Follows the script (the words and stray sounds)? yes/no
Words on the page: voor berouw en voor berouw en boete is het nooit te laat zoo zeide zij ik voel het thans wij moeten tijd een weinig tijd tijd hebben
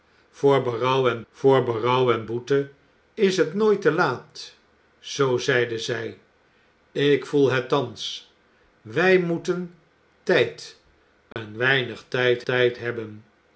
no